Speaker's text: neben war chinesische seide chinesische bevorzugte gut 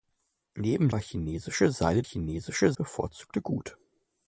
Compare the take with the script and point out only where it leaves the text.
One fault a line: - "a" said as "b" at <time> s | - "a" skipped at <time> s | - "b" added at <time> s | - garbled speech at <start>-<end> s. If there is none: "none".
none